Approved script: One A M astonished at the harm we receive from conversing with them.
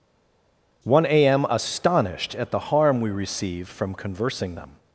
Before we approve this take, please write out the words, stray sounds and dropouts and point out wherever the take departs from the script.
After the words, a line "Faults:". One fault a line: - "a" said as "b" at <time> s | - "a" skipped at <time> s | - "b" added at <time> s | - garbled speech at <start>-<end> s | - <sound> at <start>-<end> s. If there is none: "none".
One A M astonished at the harm we receive from conversing them.
Faults:
- "with" skipped at 4.6 s